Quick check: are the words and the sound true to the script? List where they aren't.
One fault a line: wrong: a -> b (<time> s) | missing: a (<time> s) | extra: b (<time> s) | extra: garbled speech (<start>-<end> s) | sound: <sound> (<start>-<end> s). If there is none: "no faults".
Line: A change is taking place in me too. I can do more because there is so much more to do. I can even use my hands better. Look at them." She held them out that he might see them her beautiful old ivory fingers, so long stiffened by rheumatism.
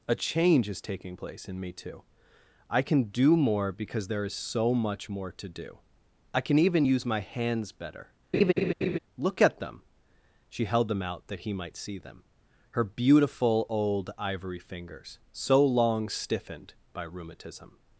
sound: laugh (8.3-9.0 s)